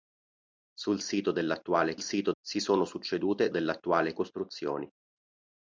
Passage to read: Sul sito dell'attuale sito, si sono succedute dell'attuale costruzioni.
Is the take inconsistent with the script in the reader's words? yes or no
no